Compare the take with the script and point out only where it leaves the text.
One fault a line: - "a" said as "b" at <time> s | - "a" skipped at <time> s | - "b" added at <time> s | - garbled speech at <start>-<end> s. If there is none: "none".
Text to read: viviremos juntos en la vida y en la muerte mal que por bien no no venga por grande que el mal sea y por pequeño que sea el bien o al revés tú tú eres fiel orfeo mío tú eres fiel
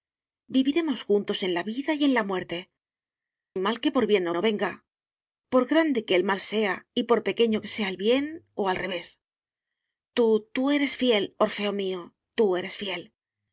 none